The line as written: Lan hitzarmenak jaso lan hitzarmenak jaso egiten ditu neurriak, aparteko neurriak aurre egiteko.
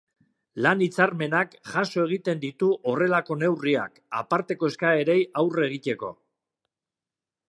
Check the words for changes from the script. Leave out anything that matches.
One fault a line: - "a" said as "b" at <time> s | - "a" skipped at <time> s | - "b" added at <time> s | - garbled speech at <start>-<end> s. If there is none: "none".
- "lan hitzarmenak jaso" skipped at 2.0 s
- "horrelako" added at 2.9 s
- "neurriak" said as "eskaerei" at 4.7 s